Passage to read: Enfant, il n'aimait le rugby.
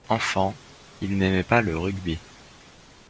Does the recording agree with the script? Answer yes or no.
no